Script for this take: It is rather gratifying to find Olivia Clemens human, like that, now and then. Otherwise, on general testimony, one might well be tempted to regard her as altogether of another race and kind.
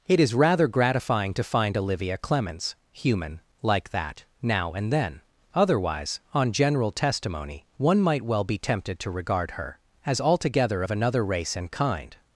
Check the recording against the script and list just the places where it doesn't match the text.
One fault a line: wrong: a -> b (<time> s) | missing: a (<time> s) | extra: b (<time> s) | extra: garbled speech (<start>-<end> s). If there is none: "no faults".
no faults